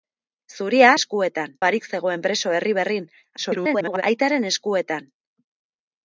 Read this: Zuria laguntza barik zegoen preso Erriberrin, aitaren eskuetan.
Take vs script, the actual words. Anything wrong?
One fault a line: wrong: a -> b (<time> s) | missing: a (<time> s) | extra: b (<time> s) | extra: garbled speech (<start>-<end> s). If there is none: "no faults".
wrong: laguntza -> eskuetan (1.0 s)
extra: garbled speech (3.4-4.0 s)